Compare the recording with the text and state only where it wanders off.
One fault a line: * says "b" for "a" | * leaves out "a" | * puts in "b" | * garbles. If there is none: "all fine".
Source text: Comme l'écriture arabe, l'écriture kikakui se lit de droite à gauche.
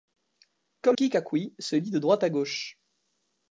* leaves out "l'écriture arabe l'écriture"